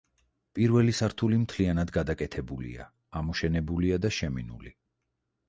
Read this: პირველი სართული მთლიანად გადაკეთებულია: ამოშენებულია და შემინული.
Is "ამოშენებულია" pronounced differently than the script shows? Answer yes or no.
no